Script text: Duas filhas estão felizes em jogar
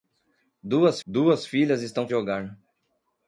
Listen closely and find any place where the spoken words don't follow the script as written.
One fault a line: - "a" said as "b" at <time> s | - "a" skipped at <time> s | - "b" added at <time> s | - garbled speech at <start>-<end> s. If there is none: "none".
- "duas" added at 1.1 s
- "felizes em" skipped at 2.1 s